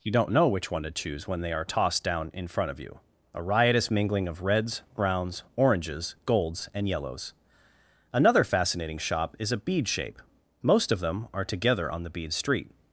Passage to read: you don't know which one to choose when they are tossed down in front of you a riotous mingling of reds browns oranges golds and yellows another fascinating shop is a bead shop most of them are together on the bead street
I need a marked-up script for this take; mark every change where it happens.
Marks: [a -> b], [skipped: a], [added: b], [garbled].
you don't know which one to choose when they are tossed down in front of you a riotous mingling of reds browns oranges golds and yellows another fascinating shop is a bead [shop -> shape] most of them are together on the bead street